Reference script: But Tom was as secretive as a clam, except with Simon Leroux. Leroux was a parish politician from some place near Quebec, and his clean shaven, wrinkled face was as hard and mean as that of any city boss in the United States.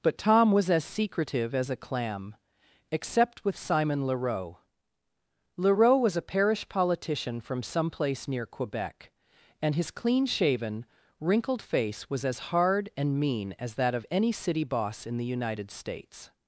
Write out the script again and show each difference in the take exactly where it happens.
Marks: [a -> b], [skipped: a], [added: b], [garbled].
But Tom was as secretive as a clam, except with Simon Leroux. Leroux was a parish politician from some place near Quebec, and his clean shaven, wrinkled face was as hard and mean as that of any city boss in the United States.